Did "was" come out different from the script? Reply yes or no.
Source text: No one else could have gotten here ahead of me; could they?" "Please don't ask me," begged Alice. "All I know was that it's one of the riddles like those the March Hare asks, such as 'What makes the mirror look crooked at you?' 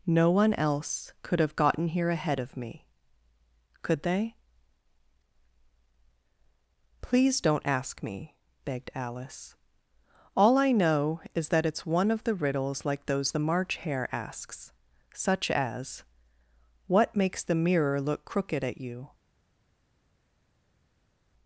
yes